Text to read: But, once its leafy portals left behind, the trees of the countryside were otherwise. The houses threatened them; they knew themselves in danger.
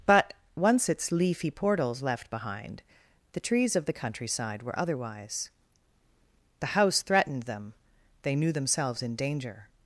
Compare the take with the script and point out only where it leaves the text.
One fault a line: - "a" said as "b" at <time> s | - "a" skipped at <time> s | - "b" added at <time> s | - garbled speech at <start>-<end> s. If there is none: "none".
- "houses" said as "house" at 6.7 s